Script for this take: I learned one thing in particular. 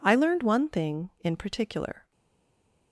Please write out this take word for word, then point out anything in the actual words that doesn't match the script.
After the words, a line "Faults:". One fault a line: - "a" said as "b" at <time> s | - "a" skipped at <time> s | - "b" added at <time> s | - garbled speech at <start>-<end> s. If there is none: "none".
I learned one thing in particular.
Faults:
none